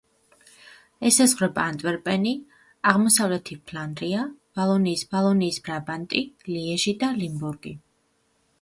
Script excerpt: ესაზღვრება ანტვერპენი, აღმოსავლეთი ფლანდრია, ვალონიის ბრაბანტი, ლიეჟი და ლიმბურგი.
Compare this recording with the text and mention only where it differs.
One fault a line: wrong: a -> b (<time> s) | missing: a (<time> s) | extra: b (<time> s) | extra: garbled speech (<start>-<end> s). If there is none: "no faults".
extra: ვალონიის (5.2 s)